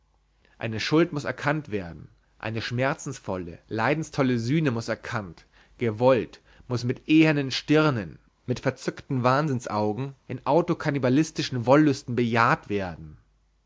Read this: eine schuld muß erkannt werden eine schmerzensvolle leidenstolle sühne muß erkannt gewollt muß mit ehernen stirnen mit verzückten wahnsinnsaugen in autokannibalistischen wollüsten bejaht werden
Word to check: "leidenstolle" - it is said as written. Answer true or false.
true